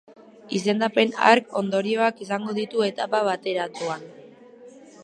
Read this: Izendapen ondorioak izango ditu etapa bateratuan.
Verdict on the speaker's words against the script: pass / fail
fail